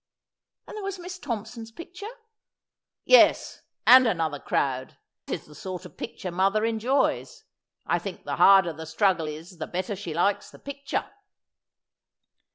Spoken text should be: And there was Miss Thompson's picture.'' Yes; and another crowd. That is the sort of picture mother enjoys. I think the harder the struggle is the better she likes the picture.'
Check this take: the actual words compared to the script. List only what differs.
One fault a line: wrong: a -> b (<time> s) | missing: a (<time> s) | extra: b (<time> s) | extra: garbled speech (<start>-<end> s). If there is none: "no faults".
missing: That (5.0 s)